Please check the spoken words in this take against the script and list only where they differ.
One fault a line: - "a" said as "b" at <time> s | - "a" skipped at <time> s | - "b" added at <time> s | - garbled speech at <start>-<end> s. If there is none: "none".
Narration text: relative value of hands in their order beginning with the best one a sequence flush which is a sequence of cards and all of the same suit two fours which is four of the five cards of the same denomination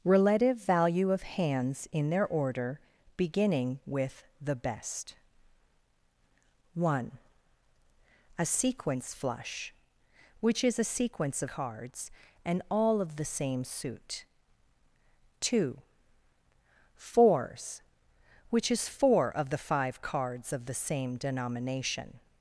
none